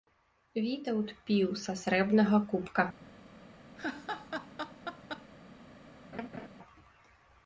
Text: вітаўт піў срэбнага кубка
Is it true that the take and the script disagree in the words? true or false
true